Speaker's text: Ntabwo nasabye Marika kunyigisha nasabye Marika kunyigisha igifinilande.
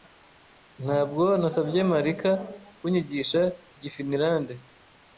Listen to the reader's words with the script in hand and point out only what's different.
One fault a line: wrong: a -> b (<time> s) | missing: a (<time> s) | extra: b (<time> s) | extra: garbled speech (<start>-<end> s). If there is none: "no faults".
missing: nasabye Marika kunyigisha (3.4 s)